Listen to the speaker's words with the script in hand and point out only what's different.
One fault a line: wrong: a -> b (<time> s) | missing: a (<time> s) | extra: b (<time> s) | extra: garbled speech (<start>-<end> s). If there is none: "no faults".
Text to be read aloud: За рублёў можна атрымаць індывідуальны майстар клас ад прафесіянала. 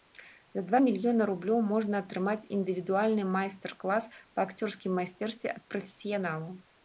extra: два мільёны (0.7 s)
extra: па акцёрскім майстэрстве (4.3 s)